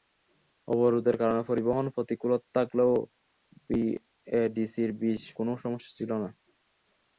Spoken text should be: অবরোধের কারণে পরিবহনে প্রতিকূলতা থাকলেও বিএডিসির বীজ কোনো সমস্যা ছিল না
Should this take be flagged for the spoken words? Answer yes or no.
no